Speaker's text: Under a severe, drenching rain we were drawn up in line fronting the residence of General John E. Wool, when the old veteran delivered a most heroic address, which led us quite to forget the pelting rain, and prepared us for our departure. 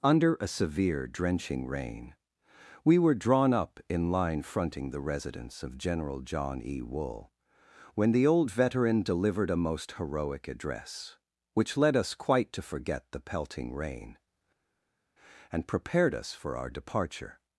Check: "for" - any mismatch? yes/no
no